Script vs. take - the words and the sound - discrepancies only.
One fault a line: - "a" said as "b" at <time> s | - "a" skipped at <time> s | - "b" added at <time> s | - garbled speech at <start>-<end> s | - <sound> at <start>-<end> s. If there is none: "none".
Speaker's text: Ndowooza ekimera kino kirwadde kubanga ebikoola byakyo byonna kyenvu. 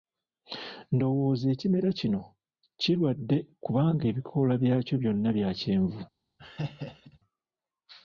- "bya" added at 5.4 s
- laugh at 6.4-7.2 s